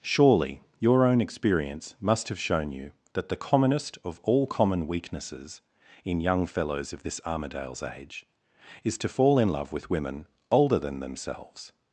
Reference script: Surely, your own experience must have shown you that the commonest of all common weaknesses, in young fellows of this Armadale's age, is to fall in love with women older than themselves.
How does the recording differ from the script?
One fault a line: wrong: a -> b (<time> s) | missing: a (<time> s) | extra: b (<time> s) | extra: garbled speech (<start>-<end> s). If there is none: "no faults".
no faults